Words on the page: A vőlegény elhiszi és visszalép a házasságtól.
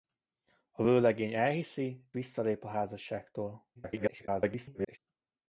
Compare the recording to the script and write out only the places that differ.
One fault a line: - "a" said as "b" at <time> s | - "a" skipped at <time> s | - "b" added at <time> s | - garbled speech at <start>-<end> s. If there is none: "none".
- "és" skipped at 2.1 s
- garbled speech at 3.8-5.0 s